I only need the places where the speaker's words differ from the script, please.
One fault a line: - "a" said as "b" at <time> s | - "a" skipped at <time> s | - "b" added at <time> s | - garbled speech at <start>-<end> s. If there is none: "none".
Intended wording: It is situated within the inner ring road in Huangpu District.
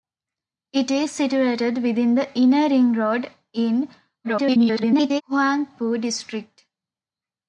- garbled speech at 4.2-5.2 s